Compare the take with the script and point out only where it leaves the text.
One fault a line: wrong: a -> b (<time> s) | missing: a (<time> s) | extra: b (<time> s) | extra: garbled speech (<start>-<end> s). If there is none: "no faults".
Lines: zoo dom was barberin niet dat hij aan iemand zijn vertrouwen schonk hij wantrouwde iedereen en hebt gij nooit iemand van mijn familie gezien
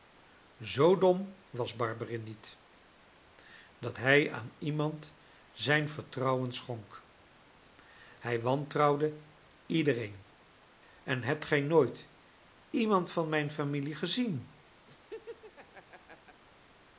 no faults